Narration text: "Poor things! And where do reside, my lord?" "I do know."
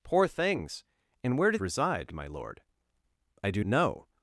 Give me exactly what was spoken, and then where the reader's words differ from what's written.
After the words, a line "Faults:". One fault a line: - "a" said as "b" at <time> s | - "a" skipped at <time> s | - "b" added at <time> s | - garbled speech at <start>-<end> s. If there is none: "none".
"Poor things! And where do reside, my lord?" "I do know."
Faults:
none